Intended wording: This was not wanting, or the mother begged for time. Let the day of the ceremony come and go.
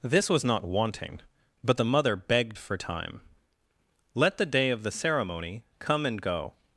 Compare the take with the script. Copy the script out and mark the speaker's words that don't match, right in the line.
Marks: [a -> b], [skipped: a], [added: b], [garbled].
This was not wanting, [or -> but] the mother begged for time. Let the day of the ceremony come and go.